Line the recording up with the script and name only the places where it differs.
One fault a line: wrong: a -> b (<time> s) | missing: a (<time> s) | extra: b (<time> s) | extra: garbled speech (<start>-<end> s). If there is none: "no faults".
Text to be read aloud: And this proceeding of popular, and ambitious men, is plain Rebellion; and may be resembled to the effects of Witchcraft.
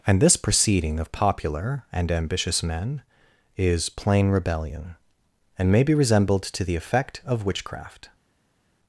wrong: effects -> effect (6.8 s)